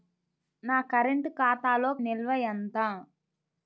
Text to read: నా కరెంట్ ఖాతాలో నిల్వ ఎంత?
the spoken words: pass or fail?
pass